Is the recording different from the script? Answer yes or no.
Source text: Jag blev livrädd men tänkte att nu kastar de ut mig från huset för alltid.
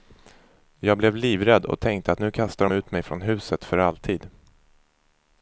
yes